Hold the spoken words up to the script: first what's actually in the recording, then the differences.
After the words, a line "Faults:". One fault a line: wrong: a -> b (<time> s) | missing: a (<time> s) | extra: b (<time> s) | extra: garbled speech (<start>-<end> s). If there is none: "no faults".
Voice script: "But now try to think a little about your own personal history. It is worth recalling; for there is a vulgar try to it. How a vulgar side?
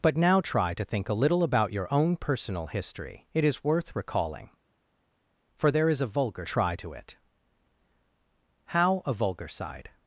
"But now try to think a little about your own personal history. It is worth recalling; for there is a vulgar try to it. How a vulgar side?
Faults:
no faults